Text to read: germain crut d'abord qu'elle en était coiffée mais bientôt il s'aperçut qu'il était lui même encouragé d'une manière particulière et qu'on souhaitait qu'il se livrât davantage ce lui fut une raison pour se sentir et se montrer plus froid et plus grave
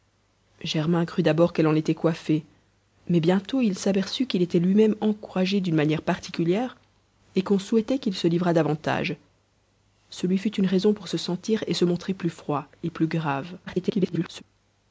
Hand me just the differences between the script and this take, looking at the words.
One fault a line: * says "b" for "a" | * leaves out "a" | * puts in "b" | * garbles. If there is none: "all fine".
* garbles